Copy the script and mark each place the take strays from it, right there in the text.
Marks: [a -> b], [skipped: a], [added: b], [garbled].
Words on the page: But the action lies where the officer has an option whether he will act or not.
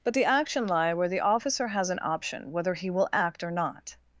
But the action [lies -> lie] where the officer has an option whether he will act or not.